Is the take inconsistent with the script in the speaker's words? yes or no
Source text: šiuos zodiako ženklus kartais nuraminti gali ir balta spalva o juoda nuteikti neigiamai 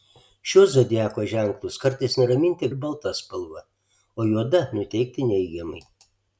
yes